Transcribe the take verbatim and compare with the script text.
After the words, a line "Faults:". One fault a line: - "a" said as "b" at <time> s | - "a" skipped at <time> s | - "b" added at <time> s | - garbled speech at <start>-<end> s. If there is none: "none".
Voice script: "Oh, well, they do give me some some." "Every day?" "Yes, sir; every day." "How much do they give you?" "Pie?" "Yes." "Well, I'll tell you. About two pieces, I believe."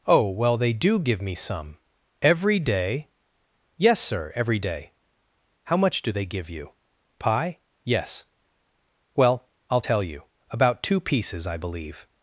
"Oh, well, they do give me some." "Every day?" "Yes, sir; every day." "How much do they give you?" "Pie?" "Yes." "Well, I'll tell you. About two pieces, I believe."
Faults:
- "some" skipped at 1.8 s